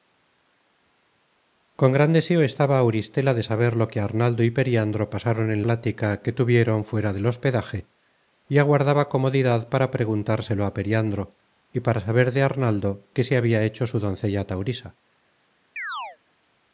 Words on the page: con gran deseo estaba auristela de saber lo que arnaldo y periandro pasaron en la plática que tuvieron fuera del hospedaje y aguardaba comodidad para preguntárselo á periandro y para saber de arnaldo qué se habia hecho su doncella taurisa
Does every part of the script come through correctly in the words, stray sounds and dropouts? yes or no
no